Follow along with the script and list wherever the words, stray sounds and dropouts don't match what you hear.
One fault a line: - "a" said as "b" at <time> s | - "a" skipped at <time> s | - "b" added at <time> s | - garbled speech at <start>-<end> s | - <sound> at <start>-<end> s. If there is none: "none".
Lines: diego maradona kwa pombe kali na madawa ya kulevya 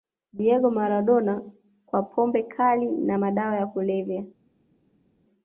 none